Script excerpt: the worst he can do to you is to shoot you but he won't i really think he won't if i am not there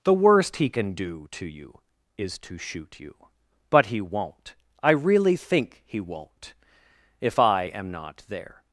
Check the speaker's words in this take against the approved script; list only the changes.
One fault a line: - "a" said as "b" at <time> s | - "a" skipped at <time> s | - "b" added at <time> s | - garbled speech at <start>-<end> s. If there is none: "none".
none